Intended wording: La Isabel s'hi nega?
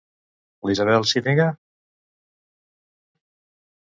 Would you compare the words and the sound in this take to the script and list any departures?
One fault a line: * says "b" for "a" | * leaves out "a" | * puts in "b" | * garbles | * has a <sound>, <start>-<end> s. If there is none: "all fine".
all fine